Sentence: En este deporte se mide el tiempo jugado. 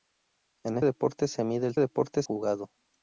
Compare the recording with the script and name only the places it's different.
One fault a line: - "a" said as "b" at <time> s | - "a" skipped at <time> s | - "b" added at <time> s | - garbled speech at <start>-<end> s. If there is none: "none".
- "este" skipped at 0.8 s
- "tiempo" said as "deporte" at 1.8 s